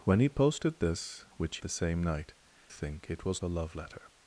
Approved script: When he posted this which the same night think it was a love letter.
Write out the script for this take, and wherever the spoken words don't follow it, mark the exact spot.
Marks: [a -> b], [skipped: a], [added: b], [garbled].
When he posted this which the same night think it was a love letter.